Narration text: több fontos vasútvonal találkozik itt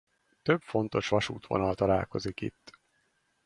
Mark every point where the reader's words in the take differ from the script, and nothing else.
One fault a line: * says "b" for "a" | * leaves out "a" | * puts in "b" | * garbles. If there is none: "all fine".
all fine